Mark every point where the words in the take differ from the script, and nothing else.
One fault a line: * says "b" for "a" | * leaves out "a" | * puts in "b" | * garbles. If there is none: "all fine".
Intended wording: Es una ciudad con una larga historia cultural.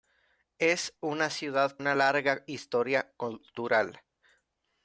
* leaves out "con"